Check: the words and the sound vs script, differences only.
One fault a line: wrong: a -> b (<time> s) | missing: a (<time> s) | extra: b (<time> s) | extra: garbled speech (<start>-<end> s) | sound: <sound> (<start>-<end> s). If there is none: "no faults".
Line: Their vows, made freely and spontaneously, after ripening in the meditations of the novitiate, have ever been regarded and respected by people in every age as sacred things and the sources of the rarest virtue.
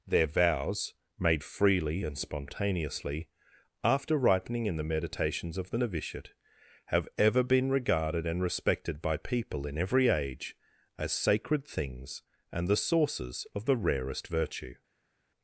no faults